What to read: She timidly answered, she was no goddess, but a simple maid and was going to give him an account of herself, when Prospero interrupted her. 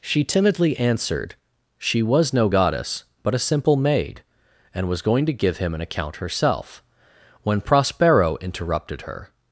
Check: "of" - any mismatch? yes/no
yes